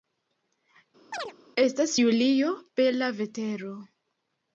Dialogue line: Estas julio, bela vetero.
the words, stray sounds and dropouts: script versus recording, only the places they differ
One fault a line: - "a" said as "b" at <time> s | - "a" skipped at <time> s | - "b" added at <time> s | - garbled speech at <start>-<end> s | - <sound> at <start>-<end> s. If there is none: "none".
- chirp at 1.1-1.3 s